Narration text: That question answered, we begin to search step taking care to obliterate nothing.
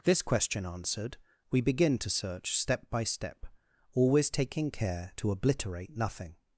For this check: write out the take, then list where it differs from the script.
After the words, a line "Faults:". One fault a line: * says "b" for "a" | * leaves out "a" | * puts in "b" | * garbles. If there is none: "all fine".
This question answered, we begin to search step by step, always taking care to obliterate nothing.
Faults:
* says "This" for "That"
* puts in "by step always"